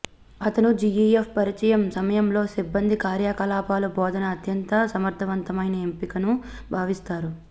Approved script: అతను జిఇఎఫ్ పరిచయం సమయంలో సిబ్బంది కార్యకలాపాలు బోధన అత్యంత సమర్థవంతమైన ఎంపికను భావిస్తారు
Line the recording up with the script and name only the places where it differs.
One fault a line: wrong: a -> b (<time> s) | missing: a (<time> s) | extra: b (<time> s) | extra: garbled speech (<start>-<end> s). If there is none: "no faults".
no faults